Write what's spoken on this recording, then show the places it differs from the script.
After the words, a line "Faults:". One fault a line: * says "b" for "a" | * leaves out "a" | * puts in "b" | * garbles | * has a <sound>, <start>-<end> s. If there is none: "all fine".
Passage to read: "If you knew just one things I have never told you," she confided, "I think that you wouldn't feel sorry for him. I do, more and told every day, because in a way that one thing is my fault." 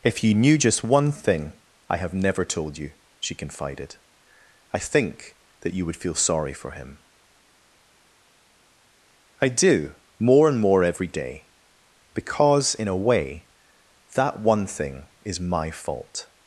"If you knew just one thing I have never told you," she confided, "I think that you would feel sorry for him. I do, more and more every day, because in a way that one thing is my fault."
Faults:
* says "thing" for "things"
* says "would" for "wouldn't"
* says "more" for "told"